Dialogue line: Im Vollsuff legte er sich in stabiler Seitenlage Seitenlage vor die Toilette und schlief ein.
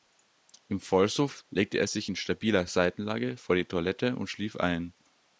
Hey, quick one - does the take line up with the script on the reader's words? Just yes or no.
no